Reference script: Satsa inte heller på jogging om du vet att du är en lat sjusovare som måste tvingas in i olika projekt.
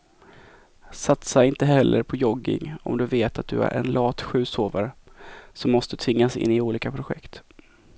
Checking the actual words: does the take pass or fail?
pass